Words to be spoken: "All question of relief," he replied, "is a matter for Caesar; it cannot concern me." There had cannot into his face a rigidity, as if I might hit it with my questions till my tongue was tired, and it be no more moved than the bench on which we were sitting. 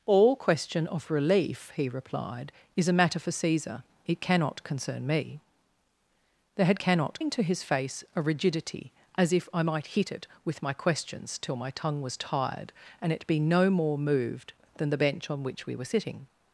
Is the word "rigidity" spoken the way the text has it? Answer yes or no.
yes